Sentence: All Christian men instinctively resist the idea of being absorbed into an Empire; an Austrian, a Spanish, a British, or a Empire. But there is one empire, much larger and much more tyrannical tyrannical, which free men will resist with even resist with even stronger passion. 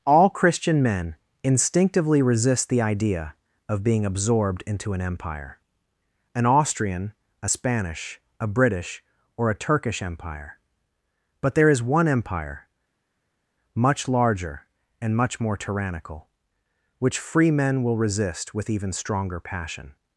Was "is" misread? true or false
false